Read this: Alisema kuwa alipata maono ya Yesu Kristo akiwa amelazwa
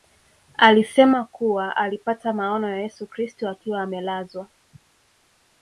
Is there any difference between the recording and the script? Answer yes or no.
no